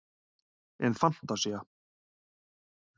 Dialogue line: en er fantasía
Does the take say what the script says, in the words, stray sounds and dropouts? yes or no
yes